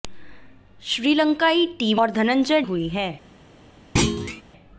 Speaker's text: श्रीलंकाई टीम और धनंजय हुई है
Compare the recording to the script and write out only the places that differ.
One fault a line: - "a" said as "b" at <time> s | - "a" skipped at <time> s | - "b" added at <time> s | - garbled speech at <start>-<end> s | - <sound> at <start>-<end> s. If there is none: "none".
- thud at 4.0-4.4 s